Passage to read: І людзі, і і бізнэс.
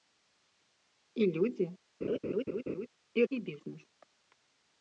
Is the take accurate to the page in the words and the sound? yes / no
no